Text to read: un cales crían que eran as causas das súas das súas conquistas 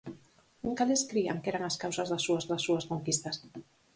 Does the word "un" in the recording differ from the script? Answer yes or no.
no